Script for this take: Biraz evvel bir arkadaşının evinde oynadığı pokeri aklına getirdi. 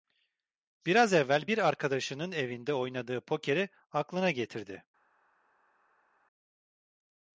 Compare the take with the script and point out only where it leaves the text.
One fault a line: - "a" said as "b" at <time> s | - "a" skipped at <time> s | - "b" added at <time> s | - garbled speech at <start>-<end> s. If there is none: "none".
none